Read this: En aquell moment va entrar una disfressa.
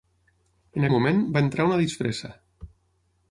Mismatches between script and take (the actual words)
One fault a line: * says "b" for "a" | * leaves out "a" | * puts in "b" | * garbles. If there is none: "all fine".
* leaves out "aquell"